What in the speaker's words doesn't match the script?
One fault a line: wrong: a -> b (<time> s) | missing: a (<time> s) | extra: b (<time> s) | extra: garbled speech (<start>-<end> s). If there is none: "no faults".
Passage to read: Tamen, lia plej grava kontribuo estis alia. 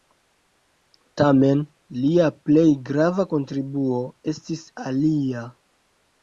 no faults